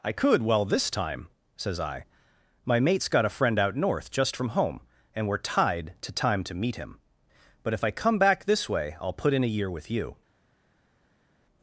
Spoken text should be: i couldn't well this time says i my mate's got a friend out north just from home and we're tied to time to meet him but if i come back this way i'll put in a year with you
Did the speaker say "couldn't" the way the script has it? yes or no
no